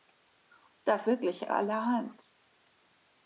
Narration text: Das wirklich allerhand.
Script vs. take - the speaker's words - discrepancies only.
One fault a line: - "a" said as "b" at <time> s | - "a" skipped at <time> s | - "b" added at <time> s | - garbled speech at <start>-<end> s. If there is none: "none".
none